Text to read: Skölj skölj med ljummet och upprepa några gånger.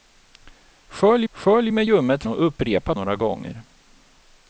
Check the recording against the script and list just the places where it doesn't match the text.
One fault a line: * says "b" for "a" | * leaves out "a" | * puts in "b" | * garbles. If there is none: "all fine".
all fine